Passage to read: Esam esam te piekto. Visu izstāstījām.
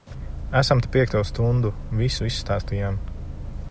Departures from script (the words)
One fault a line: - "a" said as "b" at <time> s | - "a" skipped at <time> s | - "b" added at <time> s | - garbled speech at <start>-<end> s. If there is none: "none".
- "esam" skipped at 0.8 s
- "stundu" added at 1.3 s